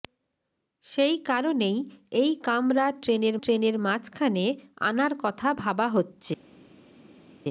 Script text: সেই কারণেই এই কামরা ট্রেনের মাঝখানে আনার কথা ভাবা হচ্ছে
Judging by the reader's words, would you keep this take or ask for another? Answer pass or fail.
fail